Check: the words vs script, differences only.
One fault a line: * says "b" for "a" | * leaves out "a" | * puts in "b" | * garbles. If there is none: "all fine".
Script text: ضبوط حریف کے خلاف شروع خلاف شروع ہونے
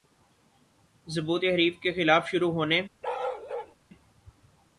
* leaves out "خلاف شروع"